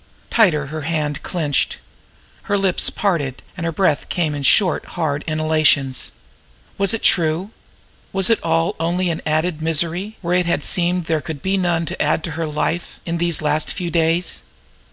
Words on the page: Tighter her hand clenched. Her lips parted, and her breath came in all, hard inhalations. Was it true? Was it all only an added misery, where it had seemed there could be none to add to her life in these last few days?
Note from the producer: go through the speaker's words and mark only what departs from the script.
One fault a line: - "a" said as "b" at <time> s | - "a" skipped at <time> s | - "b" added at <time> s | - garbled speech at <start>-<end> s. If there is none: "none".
- "all" said as "short" at 4.4 s